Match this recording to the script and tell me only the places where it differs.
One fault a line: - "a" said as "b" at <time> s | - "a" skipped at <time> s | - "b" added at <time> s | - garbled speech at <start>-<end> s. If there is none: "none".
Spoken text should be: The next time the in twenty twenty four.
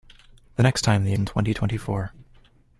none